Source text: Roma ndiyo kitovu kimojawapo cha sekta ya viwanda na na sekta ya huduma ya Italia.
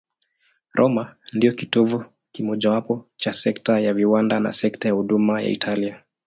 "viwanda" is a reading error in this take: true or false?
false